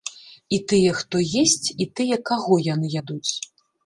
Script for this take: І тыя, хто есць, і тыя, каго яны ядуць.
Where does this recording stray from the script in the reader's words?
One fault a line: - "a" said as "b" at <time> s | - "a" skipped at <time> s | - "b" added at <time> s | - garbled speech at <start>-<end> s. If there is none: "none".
none